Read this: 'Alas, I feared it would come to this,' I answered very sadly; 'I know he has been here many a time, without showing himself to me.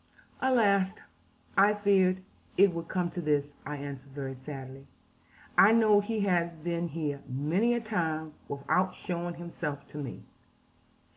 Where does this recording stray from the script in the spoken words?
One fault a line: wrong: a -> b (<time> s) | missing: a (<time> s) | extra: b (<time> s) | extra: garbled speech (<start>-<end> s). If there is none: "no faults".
no faults